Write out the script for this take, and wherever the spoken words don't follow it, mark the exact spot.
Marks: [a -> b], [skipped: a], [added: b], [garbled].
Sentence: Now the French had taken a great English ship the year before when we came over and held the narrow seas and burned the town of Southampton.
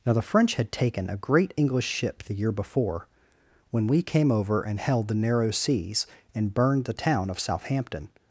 Now the French had taken a great English ship the year before when we came over and held the narrow seas and burned the town of Southampton.